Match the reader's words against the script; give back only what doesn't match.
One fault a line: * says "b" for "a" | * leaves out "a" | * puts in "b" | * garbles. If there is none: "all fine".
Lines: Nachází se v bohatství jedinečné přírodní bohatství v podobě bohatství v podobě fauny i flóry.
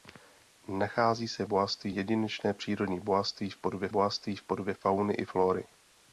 all fine